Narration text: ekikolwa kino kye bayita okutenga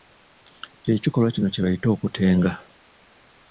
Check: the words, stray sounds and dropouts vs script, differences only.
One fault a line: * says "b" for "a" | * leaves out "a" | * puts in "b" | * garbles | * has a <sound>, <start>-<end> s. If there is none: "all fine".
all fine